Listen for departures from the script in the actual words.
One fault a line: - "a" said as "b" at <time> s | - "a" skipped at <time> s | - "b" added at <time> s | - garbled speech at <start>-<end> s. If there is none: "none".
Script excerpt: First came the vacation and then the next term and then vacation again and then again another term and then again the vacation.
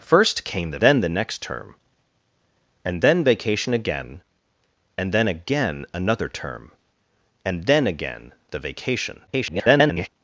- "vacation and" skipped at 0.8 s
- garbled speech at 9.3-10.1 s